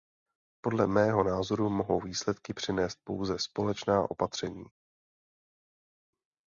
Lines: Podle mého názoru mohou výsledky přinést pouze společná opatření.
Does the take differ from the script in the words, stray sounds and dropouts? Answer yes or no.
no